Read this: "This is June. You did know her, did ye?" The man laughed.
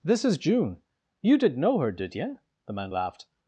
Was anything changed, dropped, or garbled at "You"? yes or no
no